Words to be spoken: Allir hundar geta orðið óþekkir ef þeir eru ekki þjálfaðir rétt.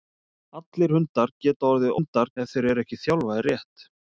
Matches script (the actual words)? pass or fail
fail